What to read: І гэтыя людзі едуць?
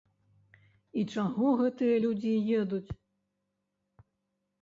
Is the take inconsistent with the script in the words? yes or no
yes